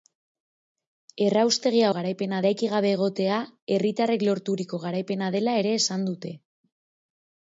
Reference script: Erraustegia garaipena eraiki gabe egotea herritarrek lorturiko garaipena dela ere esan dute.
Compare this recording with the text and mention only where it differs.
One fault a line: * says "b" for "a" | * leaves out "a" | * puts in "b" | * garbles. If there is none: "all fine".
all fine